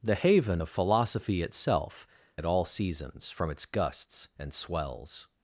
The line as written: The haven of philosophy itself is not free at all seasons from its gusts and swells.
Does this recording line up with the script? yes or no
no